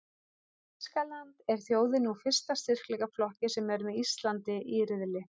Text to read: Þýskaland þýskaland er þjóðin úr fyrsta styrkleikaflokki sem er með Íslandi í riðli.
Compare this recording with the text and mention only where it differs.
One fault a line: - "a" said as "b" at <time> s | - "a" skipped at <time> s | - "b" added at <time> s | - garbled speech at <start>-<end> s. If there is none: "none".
- "þýskaland" skipped at 1.4 s